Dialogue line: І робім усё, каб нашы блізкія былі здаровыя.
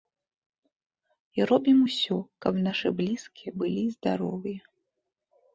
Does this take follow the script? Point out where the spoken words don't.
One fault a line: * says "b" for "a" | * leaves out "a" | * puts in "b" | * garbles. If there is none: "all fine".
all fine